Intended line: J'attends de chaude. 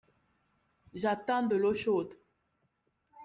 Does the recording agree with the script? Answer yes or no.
no